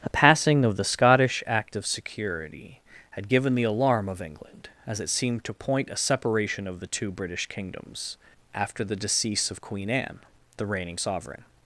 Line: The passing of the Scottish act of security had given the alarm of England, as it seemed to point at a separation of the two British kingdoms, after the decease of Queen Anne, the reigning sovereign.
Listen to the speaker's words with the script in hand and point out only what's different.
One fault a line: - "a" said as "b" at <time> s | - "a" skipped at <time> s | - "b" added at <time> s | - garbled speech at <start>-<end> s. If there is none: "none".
- "at" skipped at 5.9 s